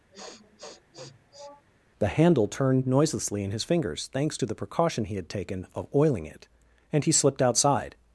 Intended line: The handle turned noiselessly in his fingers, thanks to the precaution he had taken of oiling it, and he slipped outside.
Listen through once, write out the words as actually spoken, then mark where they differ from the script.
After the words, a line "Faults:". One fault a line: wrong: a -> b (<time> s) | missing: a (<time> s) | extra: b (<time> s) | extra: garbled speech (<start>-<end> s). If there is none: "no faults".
The handle turned noiselessly in his fingers, thanks to the precaution he had taken of oiling it, and he slipped outside.
Faults:
no faults